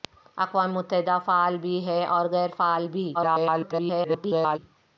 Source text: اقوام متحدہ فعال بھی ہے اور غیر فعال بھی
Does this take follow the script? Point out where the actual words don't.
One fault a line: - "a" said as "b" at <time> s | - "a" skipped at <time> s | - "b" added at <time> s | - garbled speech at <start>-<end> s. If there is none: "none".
- garbled speech at 3.1-4.6 s